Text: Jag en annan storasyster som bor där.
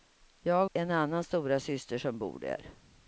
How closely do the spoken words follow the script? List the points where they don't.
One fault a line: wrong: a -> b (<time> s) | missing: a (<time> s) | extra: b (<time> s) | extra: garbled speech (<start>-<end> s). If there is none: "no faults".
no faults